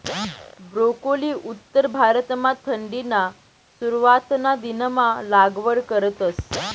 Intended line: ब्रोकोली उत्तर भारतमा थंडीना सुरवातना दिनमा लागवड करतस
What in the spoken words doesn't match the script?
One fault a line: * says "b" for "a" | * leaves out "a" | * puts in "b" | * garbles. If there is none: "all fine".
all fine